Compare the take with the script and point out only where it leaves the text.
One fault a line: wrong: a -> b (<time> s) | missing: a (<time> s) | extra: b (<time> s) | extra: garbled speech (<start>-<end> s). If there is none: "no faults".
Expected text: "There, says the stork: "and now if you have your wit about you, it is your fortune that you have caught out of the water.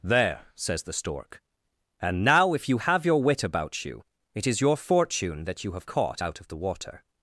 no faults